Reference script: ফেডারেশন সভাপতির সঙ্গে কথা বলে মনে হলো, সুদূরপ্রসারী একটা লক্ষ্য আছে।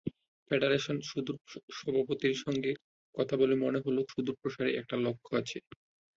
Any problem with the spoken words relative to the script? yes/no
no